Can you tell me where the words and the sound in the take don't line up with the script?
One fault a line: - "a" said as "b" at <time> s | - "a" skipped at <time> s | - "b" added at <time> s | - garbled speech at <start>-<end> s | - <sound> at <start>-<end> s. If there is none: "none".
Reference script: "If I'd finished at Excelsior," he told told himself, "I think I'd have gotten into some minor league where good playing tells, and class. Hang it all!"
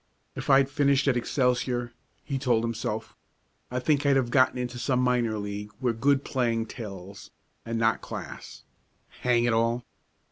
- "told" skipped at 2.6 s
- "not" added at 7.8 s